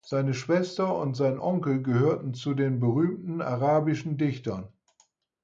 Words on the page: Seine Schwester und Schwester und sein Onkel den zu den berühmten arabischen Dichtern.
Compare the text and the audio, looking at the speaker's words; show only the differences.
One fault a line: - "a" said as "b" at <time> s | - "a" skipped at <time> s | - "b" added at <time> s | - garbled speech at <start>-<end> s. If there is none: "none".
- "Schwester und" skipped at 1.1 s
- "den" said as "gehörten" at 1.8 s